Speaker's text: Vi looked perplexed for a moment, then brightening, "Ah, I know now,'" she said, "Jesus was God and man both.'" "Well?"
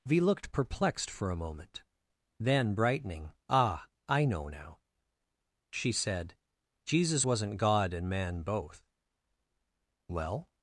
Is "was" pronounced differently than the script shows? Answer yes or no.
yes